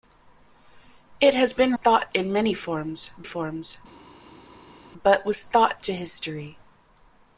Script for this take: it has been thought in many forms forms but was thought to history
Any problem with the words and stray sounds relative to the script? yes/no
no